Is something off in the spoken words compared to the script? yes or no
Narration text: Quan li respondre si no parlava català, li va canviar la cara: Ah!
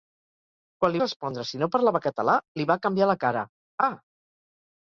no